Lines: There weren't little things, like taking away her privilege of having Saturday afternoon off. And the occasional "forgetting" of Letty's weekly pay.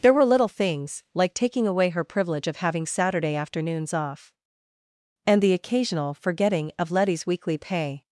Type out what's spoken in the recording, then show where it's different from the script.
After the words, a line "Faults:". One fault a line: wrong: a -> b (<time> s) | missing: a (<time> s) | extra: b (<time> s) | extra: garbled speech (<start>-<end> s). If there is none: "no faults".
There were little things, like taking away her privilege of having Saturday afternoons off. And the occasional "forgetting" of Letty's weekly pay.
Faults:
wrong: weren't -> were (0.1 s)
wrong: afternoon -> afternoons (3.4 s)